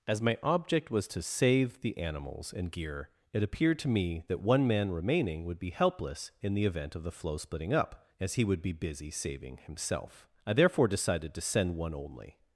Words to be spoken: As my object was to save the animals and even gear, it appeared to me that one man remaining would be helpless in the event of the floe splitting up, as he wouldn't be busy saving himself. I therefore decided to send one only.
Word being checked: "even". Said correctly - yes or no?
no